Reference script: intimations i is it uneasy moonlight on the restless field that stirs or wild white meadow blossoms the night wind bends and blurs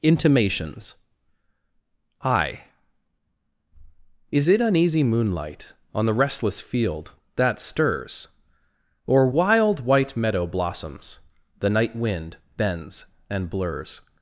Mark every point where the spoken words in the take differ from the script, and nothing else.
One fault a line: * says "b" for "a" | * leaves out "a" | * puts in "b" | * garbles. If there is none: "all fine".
all fine